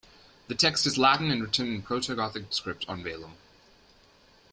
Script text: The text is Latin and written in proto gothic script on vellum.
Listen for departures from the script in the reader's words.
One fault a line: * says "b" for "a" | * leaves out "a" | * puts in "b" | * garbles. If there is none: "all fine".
all fine